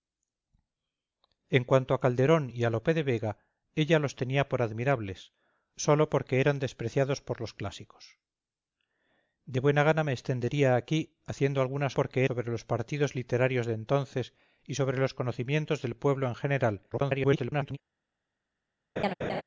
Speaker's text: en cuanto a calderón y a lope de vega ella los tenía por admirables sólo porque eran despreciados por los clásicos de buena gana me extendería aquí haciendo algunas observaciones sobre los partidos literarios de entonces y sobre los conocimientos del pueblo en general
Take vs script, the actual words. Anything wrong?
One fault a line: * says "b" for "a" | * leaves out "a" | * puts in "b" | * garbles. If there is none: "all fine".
* says "porque" for "observaciones"
* garbles